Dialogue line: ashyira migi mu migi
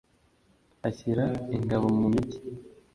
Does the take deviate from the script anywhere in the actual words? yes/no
yes